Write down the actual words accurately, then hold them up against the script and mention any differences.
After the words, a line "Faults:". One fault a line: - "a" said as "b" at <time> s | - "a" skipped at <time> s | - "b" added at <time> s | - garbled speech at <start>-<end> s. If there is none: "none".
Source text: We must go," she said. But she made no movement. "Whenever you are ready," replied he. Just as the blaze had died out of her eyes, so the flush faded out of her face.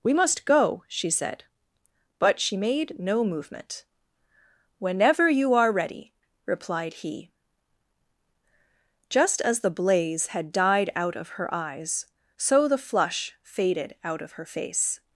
We must go," she said. But she made no movement. "Whenever you are ready," replied he. Just as the blaze had died out of her eyes, so the flush faded out of her face.
Faults:
none